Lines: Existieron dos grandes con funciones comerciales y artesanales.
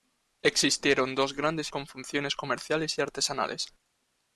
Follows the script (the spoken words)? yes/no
yes